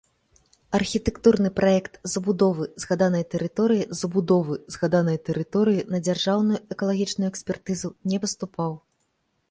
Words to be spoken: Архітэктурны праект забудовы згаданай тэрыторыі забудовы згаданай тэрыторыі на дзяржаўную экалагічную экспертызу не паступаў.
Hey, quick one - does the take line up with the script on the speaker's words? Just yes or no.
yes